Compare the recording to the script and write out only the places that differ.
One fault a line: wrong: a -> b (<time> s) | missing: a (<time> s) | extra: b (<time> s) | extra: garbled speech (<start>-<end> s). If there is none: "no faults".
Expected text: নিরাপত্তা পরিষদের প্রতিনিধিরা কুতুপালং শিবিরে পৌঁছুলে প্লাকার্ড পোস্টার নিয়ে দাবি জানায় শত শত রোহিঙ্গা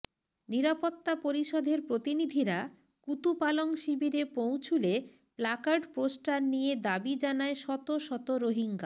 no faults